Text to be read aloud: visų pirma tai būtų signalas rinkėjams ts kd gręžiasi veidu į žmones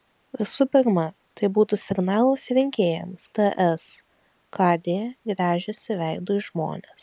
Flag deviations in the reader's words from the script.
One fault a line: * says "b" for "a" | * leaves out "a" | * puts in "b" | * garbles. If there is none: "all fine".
all fine